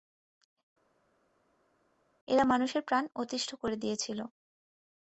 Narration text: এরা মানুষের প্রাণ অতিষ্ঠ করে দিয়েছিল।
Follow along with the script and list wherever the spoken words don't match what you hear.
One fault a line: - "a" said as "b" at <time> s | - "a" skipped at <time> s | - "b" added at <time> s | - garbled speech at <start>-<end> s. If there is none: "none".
none